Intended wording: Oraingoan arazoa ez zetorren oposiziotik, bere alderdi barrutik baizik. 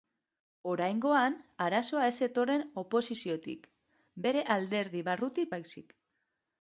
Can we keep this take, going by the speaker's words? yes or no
yes